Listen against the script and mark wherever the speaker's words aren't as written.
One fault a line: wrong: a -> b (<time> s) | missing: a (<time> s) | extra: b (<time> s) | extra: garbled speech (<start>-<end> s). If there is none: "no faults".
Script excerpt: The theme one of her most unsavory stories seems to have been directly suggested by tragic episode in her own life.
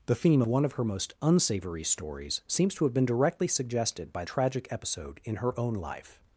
no faults